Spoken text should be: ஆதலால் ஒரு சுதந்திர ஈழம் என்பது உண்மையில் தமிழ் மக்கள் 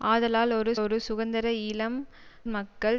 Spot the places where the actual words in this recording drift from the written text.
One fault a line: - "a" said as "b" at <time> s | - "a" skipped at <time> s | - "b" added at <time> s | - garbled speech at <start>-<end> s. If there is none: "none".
- "ஒரு" added at 0.8 s
- "என்பது உண்மையில் தமிழ்" skipped at 2.0 s